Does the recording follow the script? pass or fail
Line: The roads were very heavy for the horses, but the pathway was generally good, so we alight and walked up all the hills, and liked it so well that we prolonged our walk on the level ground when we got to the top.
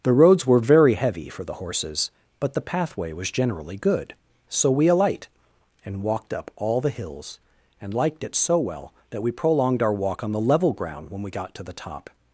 pass